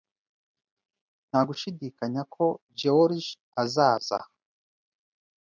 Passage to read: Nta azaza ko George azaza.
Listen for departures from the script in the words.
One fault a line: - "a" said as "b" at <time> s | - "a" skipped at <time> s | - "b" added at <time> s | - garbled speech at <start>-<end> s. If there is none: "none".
- "azaza" said as "gushidikanya" at 1.5 s